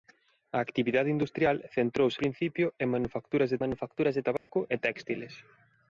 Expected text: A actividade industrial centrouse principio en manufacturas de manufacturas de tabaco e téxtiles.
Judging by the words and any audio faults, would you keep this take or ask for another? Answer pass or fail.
fail